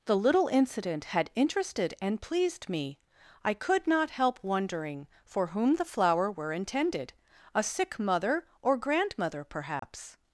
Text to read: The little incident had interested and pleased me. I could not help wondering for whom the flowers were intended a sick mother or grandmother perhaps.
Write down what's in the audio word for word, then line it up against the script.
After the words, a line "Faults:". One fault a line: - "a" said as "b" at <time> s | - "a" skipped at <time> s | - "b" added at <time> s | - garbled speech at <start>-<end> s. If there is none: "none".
The little incident had interested and pleased me. I could not help wondering for whom the flower were intended a sick mother or grandmother perhaps.
Faults:
- "flowers" said as "flower" at 5.8 s